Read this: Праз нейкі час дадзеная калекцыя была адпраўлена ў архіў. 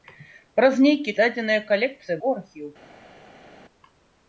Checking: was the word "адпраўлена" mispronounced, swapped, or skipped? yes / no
yes